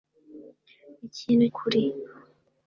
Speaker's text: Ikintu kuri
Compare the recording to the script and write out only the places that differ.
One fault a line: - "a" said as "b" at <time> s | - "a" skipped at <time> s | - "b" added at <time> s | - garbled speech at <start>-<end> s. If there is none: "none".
none